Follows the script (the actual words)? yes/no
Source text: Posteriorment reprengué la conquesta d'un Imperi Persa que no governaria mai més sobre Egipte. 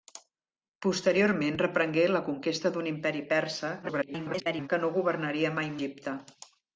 no